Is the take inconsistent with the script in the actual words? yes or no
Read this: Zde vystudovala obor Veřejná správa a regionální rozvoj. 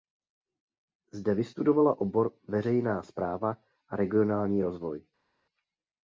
no